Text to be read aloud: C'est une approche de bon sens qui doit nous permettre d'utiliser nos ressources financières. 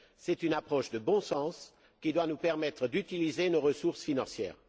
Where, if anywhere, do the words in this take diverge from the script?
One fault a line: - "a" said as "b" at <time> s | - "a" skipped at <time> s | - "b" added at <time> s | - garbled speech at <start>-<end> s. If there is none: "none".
none